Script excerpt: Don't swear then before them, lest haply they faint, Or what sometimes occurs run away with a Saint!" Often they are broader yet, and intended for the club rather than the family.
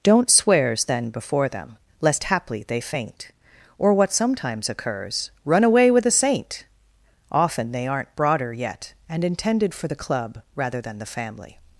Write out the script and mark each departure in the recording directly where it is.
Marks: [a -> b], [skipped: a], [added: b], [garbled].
Don't [swear -> swears] then before them, lest haply they faint, Or what sometimes occurs run away with a Saint!" Often they [are -> aren't] broader yet, and intended for the club rather than the family.